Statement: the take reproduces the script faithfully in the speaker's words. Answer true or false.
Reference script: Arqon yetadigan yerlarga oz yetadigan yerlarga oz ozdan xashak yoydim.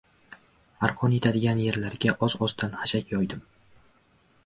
false